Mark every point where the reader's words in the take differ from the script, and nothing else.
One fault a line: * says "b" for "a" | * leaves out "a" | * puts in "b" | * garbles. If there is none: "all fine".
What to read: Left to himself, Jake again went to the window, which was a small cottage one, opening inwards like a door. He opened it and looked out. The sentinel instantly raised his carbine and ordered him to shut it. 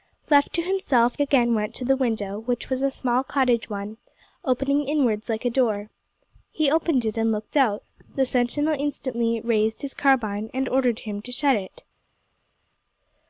* leaves out "Jake"